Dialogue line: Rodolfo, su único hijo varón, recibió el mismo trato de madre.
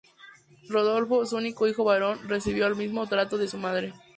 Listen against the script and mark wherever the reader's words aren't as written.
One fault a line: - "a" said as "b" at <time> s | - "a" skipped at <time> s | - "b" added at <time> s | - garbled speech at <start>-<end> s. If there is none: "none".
- "su" added at 3.4 s